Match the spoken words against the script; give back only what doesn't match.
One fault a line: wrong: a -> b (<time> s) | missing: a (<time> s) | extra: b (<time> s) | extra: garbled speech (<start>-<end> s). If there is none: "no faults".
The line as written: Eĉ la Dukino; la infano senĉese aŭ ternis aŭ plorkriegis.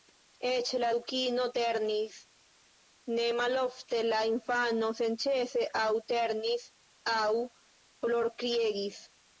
extra: ternis ne malofte (1.6 s)